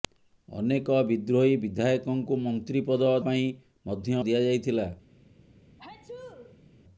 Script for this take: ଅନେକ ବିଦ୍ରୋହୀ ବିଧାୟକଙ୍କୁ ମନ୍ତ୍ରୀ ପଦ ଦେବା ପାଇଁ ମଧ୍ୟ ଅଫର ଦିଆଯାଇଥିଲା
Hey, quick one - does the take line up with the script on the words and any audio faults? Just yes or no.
no